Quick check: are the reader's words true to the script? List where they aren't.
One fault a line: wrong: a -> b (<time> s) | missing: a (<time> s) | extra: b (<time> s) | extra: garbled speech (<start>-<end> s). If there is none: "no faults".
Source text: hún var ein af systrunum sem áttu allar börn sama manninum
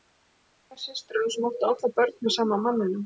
extra: með (2.2 s)